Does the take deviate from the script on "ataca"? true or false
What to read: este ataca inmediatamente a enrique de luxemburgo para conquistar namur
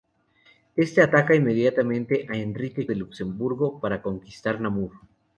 false